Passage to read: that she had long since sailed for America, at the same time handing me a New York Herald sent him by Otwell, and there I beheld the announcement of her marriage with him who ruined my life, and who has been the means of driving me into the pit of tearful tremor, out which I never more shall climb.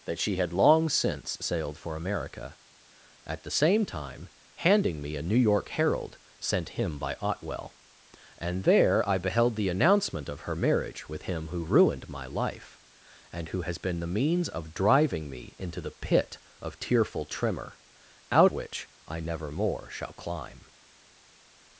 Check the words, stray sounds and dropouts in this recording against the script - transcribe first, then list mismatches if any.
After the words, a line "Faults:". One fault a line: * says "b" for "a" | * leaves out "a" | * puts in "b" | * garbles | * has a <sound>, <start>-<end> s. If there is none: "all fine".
that she had long since sailed for America, at the same time handing me a New York Herald sent him by Otwell, and there I beheld the announcement of her marriage with him who ruined my life, and who has been the means of driving me into the pit of tearful tremor, out which I never more shall climb.
Faults:
all fine